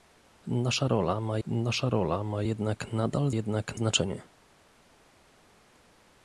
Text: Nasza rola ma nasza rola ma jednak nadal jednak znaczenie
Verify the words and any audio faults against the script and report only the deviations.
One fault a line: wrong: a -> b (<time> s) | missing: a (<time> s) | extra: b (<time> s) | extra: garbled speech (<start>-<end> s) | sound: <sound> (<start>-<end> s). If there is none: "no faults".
no faults